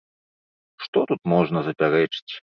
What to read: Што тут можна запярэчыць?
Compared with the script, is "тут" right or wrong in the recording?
right